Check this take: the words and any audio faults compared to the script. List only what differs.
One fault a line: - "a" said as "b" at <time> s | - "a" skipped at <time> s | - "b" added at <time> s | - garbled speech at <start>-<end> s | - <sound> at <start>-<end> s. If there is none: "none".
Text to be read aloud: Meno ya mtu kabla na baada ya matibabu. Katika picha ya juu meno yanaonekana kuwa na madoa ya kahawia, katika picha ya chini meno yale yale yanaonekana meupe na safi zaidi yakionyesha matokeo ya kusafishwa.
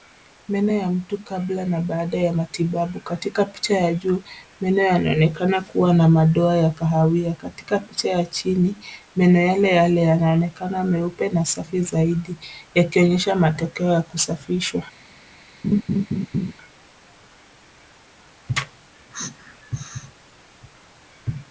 - laugh at 15.6-16.5 s